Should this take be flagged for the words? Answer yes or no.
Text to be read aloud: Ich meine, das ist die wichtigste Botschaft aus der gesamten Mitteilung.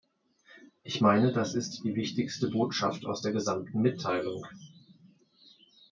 no